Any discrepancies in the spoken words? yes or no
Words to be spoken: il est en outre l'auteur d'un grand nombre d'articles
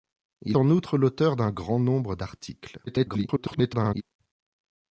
yes